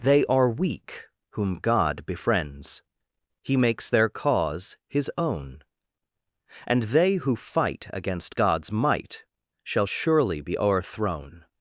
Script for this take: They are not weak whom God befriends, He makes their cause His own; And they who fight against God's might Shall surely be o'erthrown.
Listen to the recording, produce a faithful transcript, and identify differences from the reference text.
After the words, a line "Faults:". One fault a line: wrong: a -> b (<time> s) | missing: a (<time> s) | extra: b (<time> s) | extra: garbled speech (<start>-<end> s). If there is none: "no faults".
They are weak whom God befriends, He makes their cause His own; And they who fight against God's might Shall surely be o'erthrown.
Faults:
missing: not (0.5 s)